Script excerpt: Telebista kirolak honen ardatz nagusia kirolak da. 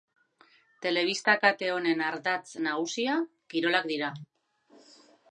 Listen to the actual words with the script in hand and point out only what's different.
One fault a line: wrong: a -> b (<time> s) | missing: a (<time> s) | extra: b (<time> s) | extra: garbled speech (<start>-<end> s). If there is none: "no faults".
wrong: kirolak -> kate (1.4 s)
wrong: da -> dira (3.9 s)